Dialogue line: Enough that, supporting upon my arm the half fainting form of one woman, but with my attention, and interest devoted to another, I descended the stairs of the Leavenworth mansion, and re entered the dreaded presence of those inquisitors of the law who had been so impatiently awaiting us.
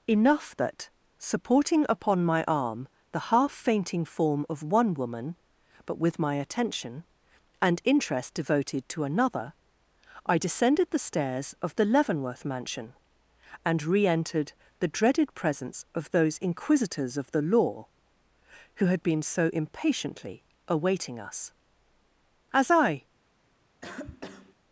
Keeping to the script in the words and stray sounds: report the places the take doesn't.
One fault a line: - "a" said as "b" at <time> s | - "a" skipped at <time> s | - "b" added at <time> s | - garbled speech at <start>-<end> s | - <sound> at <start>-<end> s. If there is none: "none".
- "As I" added at 22.5 s
- cough at 23.8-24.6 s